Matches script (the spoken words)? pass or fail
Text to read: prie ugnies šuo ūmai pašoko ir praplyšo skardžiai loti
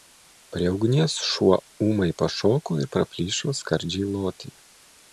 pass